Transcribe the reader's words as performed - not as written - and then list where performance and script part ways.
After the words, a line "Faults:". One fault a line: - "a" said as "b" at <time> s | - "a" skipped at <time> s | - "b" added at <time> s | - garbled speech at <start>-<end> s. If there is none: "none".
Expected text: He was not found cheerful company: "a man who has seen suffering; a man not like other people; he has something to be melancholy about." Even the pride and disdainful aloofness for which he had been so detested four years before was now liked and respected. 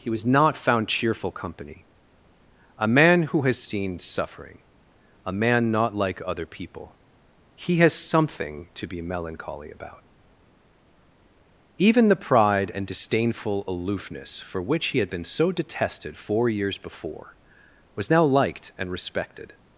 He was not found cheerful company: "a man who has seen suffering; a man not like other people; he has something to be melancholy about." Even the pride and disdainful aloofness for which he had been so detested four years before was now liked and respected.
Faults:
none